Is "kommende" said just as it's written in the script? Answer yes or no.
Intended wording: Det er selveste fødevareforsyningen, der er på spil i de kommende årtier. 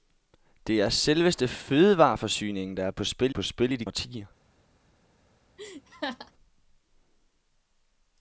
no